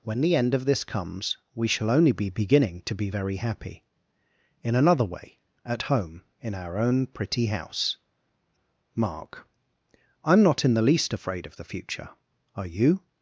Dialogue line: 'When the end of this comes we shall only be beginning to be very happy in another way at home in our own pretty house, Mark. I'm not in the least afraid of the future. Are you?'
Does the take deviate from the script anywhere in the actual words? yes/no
no